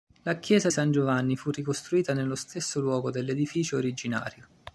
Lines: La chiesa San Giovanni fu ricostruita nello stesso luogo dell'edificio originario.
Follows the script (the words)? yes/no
yes